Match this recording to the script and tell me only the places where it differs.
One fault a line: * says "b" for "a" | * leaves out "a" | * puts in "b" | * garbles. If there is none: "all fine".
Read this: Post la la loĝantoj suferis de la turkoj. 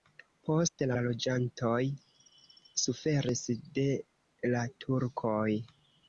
all fine